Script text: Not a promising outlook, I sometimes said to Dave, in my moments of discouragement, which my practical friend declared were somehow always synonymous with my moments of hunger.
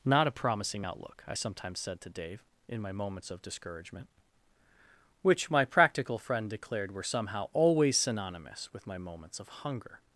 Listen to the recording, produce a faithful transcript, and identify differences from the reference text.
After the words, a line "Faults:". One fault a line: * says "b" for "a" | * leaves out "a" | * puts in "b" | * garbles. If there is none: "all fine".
Not a promising outlook, I sometimes said to Dave, in my moments of discouragement, which my practical friend declared were somehow always synonymous with my moments of hunger.
Faults:
all fine